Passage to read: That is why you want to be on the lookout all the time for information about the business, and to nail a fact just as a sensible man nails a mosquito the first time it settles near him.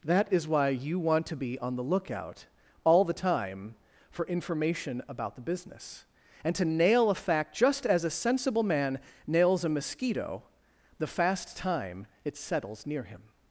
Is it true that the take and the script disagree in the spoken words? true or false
true